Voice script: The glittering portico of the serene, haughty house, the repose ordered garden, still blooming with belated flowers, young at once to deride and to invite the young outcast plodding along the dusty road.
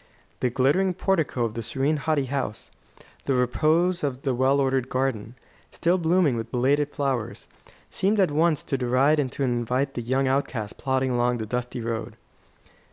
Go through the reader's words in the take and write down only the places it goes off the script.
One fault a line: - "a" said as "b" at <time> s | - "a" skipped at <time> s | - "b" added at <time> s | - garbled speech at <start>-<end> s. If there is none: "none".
- "of the well" added at 4.0 s
- "young" said as "seemed" at 7.9 s